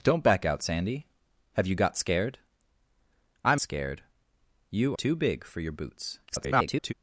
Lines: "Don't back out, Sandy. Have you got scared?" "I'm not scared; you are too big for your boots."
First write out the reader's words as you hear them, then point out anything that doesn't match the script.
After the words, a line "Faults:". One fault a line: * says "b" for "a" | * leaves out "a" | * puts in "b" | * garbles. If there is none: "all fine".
"Don't back out, Sandy. Have you got scared?" "I'm scared; you too big for your boots." [garbled]
Faults:
* leaves out "not"
* leaves out "are"
* garbles